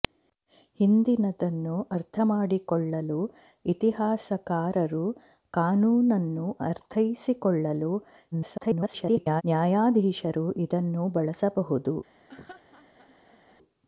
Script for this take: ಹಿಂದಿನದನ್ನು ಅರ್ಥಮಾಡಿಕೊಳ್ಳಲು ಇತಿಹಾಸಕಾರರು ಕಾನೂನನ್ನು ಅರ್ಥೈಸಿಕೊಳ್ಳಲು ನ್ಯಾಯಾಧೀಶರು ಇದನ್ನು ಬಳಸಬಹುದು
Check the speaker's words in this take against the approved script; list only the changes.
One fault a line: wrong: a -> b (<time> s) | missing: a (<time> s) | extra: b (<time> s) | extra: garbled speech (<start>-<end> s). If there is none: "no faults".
extra: garbled speech (8.3-9.4 s)